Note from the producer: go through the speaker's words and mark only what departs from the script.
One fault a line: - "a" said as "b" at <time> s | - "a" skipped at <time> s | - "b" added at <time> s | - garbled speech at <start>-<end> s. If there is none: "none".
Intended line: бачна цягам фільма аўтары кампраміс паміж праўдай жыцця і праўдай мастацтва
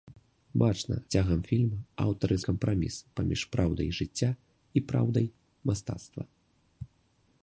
none